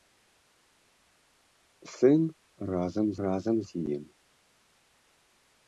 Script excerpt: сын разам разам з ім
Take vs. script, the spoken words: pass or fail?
pass